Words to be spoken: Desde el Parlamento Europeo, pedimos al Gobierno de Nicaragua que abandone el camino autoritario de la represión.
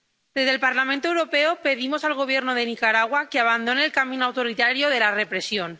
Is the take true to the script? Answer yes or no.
yes